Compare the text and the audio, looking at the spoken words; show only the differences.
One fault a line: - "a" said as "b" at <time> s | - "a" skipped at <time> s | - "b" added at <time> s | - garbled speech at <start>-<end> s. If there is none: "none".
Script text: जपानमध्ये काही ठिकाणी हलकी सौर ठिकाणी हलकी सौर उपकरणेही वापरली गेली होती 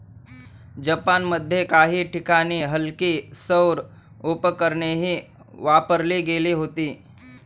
- "ठिकाणी हलकी सौर" skipped at 3.8 s